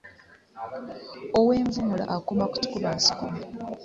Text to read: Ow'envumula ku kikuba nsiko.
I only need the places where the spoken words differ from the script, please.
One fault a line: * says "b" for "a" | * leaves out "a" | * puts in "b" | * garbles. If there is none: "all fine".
* puts in "akoma"